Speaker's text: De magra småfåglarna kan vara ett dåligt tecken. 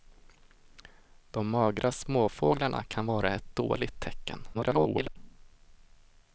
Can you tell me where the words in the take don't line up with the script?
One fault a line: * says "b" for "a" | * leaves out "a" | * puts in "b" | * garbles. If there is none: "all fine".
* garbles